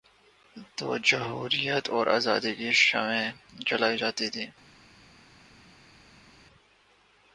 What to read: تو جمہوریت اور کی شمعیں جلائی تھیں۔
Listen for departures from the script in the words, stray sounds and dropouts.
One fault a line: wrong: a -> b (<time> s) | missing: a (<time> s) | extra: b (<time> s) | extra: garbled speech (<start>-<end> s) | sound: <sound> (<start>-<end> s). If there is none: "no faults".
extra: آزادی (2.1 s)
extra: جاتی (4.0 s)